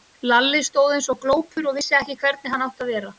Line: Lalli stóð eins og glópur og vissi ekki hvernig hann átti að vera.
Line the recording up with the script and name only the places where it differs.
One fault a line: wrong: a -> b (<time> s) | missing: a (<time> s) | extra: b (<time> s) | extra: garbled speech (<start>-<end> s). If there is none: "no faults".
no faults